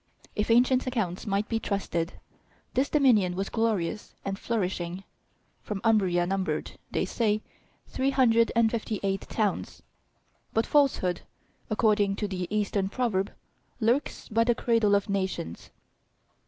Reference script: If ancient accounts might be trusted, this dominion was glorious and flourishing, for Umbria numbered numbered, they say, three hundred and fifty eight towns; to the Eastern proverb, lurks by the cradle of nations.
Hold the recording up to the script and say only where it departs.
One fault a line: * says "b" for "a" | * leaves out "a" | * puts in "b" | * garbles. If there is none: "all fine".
* leaves out "numbered"
* puts in "but falsehood according"